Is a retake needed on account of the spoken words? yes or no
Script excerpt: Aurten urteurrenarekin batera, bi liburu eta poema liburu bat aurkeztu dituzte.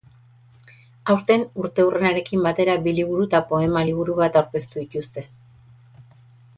no